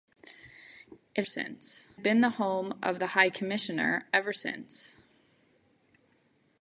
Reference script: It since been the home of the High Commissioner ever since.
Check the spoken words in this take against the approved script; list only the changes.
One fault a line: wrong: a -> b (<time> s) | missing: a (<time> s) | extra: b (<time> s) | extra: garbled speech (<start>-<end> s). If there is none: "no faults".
no faults